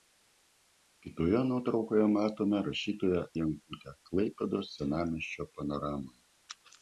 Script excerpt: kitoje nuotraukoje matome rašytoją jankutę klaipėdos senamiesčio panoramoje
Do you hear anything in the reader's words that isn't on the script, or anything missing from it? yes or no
no